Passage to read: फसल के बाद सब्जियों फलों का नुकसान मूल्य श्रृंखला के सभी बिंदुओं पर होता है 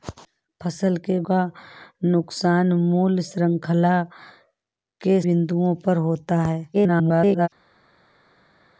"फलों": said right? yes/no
no